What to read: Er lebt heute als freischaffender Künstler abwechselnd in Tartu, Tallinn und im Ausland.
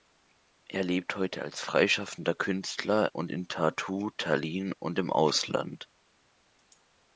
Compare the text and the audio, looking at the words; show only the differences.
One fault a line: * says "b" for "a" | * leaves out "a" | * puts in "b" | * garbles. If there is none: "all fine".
* says "und" for "abwechselnd"